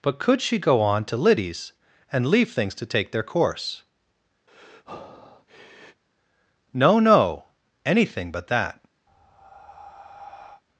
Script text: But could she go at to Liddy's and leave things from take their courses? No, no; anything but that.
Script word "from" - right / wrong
wrong